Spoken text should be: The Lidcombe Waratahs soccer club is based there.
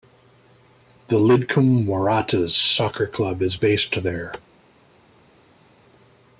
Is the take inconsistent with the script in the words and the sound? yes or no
no